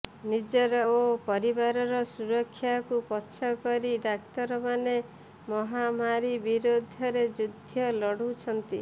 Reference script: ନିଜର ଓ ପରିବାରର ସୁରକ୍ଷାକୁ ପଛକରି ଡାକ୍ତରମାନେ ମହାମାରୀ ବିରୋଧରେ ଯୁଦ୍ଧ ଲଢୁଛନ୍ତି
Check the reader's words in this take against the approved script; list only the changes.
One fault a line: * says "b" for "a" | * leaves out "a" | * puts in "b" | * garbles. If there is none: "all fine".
all fine